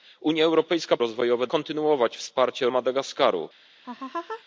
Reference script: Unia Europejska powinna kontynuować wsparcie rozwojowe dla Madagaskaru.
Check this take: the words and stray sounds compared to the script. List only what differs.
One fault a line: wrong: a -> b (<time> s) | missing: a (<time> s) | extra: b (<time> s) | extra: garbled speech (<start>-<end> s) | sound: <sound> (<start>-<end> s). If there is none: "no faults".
wrong: powinna -> rozwojowe (1.0 s)
missing: rozwojowe dla (2.7 s)
sound: laugh (3.8-4.4 s)